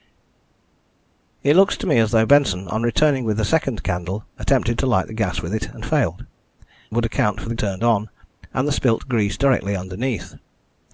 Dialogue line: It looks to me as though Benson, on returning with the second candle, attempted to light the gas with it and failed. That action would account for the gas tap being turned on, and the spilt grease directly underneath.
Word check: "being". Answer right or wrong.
wrong